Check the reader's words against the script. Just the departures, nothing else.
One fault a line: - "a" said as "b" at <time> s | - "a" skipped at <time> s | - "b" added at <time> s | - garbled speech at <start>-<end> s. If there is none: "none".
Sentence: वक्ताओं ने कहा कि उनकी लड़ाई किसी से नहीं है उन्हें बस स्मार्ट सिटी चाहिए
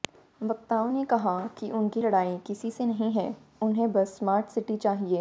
none